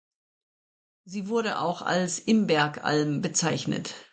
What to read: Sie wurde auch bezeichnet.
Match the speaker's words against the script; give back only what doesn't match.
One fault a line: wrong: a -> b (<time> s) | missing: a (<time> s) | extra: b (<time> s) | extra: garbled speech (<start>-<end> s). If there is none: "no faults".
extra: als Imbergalm (1.8 s)